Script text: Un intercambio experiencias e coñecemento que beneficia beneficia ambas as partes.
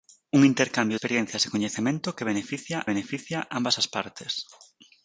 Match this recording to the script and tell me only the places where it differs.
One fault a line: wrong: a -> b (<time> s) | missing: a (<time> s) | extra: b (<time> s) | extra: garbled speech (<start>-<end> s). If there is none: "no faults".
no faults